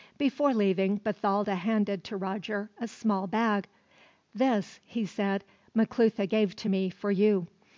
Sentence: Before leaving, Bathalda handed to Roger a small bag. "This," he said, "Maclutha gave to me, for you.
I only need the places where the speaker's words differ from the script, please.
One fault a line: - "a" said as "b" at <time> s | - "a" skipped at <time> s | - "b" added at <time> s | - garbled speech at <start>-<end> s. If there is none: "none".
none